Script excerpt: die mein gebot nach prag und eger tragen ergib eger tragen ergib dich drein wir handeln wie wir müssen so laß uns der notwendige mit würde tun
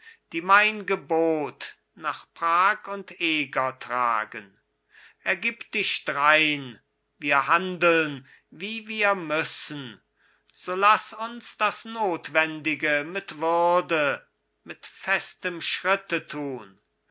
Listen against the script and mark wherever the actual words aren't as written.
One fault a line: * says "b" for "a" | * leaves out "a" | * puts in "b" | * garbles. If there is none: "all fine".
* leaves out "eger tragen ergib"
* says "das" for "der"
* puts in "mit festem schritte"